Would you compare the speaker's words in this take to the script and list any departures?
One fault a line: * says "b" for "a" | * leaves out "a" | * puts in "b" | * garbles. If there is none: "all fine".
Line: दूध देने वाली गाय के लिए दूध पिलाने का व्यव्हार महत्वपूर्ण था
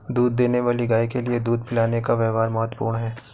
* says "है" for "था"